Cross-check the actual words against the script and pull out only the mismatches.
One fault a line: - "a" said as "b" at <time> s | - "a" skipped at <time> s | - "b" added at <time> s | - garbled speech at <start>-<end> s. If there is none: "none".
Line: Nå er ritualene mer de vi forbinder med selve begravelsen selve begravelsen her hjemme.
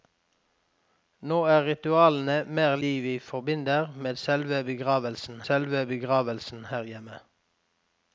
none